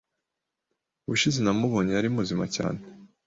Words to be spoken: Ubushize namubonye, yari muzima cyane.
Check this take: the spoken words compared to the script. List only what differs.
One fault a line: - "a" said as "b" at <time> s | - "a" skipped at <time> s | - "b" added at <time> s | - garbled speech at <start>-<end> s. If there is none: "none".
none